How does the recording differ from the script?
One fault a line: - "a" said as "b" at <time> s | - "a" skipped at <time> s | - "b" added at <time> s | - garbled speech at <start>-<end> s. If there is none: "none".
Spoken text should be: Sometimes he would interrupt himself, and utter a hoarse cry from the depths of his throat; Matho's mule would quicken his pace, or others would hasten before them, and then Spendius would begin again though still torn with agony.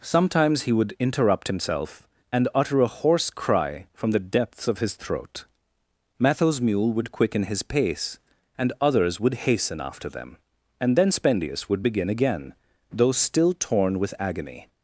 - "or" said as "and" at 8.6 s
- "before" said as "after" at 9.8 s